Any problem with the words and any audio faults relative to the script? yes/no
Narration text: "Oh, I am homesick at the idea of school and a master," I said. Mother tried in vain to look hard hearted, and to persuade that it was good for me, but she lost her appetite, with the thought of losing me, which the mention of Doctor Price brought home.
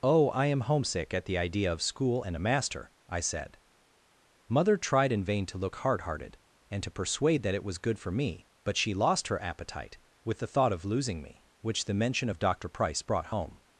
no